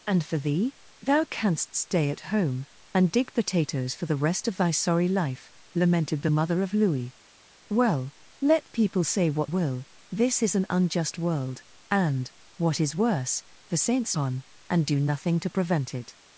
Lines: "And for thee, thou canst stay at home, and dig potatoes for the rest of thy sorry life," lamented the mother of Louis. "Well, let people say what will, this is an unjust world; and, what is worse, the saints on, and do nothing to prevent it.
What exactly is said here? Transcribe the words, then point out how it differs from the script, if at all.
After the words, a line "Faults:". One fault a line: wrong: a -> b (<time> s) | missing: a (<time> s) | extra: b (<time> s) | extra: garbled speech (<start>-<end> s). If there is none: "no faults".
"And for thee, thou canst stay at home, and dig potatoes for the rest of thy sorry life," lamented the mother of Louis. "Well, let people say what will, this is an unjust world; and, what is worse, the saints on, and do nothing to prevent it.
Faults:
no faults